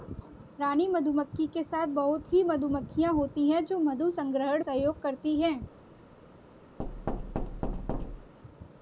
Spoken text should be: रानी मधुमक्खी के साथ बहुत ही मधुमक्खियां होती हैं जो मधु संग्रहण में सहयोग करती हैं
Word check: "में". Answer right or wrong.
wrong